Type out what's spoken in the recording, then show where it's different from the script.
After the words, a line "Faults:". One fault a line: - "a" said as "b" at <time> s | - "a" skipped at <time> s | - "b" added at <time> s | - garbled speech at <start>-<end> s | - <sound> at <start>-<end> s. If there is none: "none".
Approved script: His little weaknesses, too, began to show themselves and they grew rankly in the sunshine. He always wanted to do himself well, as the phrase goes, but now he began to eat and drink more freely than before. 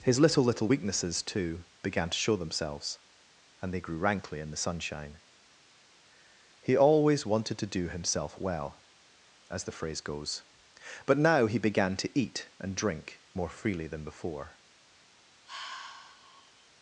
His little little weaknesses, too, began to show themselves and they grew rankly in the sunshine. He always wanted to do himself well, as the phrase goes, but now he began to eat and drink more freely than before.
Faults:
- "little" added at 0.4 s
- sigh at 15.4-16.7 s